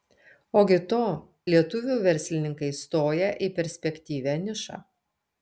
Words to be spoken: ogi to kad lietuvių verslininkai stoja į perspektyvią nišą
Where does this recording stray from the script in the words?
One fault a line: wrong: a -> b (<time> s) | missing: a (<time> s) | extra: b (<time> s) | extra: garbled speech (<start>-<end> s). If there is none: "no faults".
missing: kad (1.0 s)